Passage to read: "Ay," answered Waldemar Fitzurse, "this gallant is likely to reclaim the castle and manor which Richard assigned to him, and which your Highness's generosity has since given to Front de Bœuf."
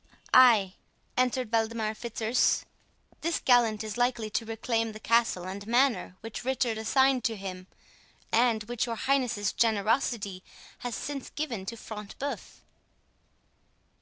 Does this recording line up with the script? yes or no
yes